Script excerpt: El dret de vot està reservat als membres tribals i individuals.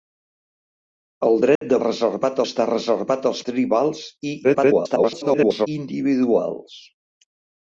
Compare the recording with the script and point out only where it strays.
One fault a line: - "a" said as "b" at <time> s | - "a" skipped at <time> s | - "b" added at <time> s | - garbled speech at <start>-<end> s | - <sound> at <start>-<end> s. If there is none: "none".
- dropout at 1.6-1.6 s
- "vot" said as "reservat" at 1.8 s
- "membres" skipped at 3.4 s
- garbled speech at 4.4-5.7 s